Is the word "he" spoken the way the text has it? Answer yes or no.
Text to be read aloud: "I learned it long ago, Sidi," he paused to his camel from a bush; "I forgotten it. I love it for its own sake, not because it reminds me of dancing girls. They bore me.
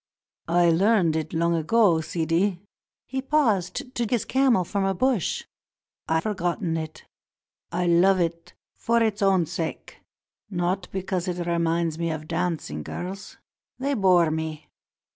yes